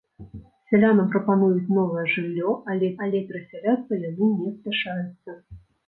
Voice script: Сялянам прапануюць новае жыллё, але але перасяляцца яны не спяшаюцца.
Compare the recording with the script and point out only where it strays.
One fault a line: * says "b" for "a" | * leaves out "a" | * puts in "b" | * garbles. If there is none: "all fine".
all fine